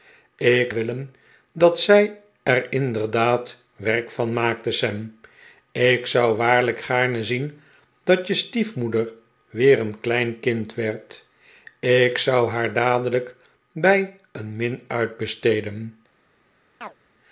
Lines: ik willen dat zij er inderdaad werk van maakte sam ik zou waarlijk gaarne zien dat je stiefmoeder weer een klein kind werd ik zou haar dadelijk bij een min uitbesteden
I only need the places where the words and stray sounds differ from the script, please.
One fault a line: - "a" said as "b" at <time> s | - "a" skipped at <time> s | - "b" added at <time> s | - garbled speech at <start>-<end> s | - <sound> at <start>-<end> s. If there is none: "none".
- chirp at 16.8-17.0 s